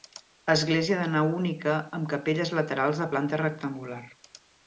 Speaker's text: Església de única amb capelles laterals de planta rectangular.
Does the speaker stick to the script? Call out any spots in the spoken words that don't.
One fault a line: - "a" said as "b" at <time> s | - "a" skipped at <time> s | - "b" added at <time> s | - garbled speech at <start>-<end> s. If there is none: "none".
- "nau" added at 1.1 s